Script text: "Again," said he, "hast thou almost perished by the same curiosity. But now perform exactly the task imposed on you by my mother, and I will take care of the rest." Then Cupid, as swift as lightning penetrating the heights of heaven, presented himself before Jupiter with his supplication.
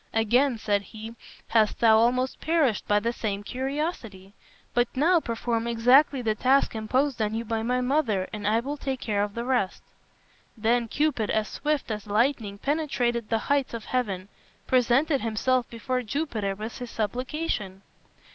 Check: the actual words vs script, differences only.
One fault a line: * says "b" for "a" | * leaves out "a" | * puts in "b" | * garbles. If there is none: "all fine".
all fine